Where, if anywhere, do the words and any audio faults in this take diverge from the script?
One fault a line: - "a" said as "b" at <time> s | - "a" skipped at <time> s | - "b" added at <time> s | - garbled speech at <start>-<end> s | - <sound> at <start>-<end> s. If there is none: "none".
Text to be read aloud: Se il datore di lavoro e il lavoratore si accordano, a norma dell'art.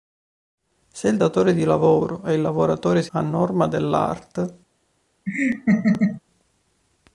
- "accordano" skipped at 3.1 s
- laugh at 5.3-6.2 s